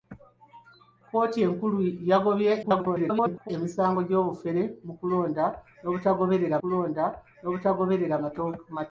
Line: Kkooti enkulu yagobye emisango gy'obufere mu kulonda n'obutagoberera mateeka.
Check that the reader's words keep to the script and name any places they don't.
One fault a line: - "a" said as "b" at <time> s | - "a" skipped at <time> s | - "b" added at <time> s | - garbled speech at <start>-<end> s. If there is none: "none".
- garbled speech at 2.6-3.5 s
- "kulonda n'obutagoberera" added at 6.6 s